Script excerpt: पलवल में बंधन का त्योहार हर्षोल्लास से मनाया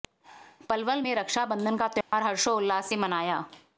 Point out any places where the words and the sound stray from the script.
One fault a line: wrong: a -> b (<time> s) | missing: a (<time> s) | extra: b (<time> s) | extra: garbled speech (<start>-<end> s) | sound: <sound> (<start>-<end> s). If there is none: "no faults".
extra: रक्षा (1.1 s)
sound: dropout (2.0-2.1 s)